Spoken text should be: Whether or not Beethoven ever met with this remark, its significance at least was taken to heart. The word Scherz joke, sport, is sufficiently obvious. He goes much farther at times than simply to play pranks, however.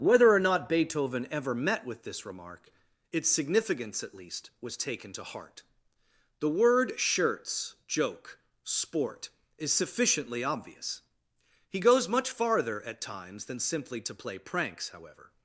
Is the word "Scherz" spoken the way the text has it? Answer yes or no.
yes